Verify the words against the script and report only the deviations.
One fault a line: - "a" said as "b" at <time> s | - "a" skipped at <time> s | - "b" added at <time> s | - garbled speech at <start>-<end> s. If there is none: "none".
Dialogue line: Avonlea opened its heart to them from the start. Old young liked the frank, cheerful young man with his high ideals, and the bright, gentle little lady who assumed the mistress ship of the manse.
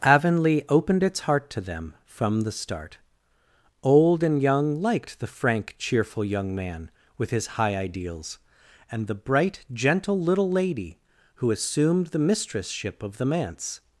- "and" added at 4.2 s